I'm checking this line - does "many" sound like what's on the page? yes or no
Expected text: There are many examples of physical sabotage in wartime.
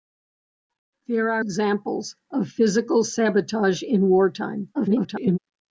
no